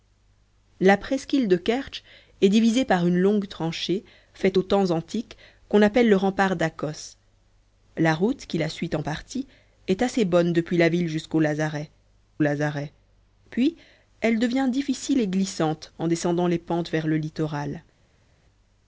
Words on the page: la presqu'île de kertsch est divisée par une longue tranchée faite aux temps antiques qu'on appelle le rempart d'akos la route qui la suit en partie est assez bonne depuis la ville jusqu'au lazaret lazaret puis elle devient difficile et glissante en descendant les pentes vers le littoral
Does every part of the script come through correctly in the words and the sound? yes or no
yes